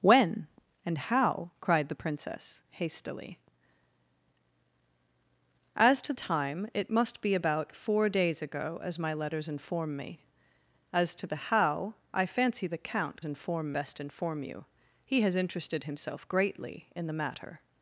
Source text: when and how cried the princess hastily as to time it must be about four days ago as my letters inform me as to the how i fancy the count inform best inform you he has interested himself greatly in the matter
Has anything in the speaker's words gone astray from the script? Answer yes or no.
no